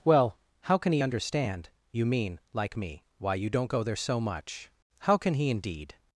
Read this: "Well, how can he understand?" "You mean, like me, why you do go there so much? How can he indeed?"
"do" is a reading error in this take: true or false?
true